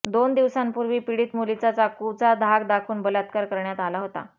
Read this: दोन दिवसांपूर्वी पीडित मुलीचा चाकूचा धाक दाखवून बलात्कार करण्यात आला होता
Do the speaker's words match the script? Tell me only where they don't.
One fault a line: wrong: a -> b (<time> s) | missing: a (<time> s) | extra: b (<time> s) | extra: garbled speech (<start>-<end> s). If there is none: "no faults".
no faults